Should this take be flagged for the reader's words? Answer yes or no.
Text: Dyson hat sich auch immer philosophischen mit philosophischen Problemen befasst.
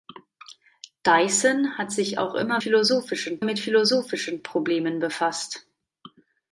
no